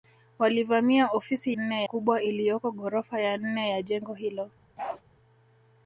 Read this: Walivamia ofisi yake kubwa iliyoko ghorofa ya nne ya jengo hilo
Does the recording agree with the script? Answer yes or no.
no